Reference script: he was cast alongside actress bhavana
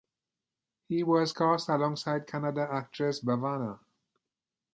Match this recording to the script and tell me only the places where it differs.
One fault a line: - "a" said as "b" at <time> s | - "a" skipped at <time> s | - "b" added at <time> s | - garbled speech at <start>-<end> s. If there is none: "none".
- "kannada" added at 2.3 s